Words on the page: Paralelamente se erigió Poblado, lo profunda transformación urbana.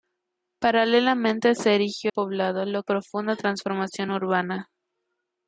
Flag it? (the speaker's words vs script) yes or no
no